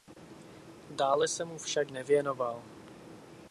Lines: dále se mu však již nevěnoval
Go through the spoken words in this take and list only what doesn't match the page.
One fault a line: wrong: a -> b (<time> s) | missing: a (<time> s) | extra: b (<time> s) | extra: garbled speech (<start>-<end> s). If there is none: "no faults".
missing: již (1.9 s)